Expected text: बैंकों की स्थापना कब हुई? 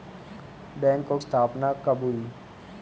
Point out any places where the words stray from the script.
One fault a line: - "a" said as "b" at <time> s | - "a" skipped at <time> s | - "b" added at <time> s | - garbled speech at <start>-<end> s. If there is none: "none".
- "की" skipped at 1.2 s